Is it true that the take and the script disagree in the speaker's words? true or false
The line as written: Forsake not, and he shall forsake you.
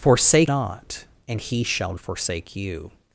false